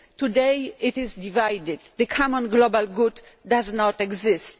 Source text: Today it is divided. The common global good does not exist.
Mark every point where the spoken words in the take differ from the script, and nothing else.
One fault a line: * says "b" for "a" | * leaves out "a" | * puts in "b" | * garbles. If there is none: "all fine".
all fine